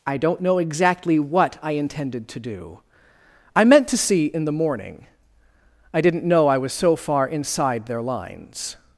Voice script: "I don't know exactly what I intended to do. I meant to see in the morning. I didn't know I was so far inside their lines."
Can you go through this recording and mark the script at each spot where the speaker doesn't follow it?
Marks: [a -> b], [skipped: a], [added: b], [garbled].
"I don't know exactly what I intended to do. I meant to see in the morning. I didn't know I was so far inside their lines."